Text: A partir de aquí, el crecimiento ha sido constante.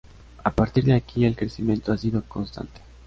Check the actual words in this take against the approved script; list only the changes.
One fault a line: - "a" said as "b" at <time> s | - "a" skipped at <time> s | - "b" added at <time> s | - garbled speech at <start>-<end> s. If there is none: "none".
none